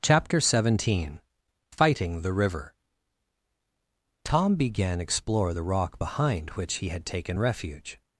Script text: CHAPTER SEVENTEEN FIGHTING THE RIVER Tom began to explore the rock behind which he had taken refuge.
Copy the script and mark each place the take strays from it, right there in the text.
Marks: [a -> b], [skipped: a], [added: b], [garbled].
CHAPTER SEVENTEEN FIGHTING THE RIVER Tom began [skipped: to] explore the rock behind which he had taken refuge.